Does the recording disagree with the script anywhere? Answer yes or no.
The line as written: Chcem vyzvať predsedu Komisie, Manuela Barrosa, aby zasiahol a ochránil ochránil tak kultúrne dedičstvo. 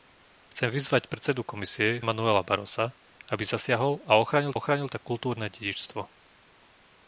no